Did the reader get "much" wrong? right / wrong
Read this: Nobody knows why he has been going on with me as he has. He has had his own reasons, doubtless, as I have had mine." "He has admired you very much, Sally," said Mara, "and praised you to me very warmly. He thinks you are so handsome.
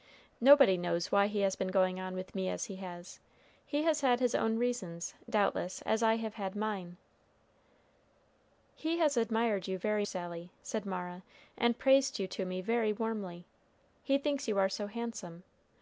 wrong